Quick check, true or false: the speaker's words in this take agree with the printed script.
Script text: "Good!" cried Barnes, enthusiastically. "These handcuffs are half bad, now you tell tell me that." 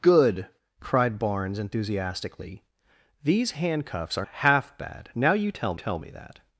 true